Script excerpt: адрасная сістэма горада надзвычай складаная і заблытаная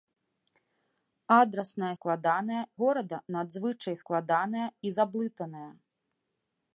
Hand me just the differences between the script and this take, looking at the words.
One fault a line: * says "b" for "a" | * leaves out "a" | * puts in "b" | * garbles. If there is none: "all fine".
* says "складаная" for "сістэма"